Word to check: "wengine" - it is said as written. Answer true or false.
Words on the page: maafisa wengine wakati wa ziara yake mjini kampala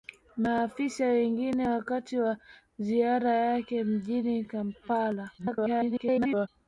true